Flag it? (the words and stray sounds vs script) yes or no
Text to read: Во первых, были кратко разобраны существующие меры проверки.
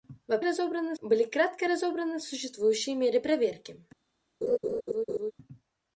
yes